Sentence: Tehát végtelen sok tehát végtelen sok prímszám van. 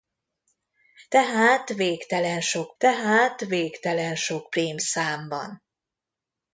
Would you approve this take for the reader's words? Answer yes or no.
yes